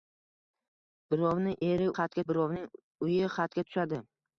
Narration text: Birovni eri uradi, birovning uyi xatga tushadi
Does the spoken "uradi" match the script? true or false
false